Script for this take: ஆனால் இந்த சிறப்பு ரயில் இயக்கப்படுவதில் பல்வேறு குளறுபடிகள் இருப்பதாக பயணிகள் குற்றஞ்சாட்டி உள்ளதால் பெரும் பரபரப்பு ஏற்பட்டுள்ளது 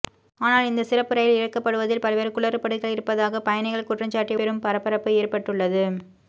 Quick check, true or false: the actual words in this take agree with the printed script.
false